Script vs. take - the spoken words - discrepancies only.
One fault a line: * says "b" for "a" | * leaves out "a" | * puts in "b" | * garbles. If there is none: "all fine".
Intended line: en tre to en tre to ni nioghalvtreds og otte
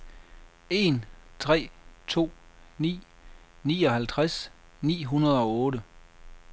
* says "ni nioghalvtreds" for "en tre to"
* says "hundrede" for "nioghalvtreds"